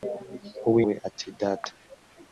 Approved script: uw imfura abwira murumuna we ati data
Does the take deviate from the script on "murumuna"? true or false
true